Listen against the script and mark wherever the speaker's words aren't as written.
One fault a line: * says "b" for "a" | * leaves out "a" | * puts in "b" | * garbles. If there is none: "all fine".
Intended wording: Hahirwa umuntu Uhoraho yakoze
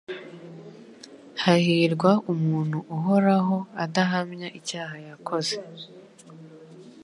* puts in "adahamya icyaha"